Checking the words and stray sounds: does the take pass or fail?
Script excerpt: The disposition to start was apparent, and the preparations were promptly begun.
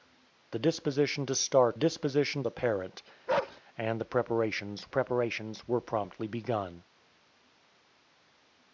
fail